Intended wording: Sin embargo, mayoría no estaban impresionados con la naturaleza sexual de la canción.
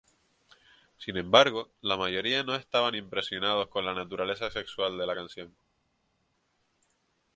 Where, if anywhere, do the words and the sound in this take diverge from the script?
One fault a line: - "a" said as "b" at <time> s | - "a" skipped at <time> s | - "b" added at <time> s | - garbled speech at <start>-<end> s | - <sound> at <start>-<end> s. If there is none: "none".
- "la" added at 1.8 s